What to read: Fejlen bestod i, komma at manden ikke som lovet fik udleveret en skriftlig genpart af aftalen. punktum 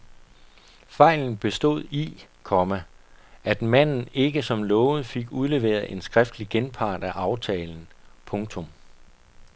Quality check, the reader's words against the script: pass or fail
pass